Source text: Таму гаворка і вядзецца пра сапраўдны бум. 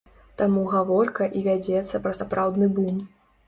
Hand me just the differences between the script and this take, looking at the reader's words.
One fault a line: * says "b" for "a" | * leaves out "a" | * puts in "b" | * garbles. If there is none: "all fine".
all fine